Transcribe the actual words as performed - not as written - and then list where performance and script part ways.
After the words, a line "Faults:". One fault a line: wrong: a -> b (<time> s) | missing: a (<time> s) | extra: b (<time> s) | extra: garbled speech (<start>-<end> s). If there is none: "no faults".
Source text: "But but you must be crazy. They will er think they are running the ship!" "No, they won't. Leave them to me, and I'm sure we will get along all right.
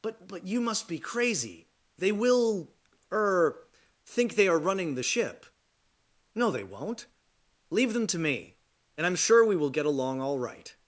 "But but you must be crazy. They will er think they are running the ship!" "No, they won't. Leave them to me, and I'm sure we will get along all right.
Faults:
no faults